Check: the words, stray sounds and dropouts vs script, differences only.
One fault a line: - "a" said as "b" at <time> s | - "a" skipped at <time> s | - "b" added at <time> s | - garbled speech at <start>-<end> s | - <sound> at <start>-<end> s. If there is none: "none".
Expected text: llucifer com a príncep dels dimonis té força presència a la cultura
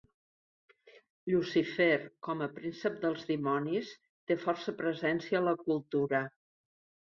none